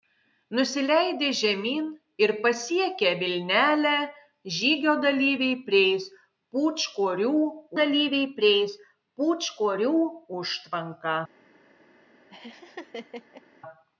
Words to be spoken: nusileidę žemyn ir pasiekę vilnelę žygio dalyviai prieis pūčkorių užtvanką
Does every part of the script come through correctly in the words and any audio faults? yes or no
no